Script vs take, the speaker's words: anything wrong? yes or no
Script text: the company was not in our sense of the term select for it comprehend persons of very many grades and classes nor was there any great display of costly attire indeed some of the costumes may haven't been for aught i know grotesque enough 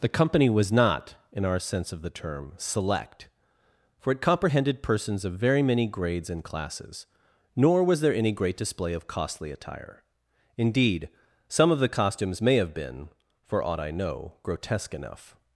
yes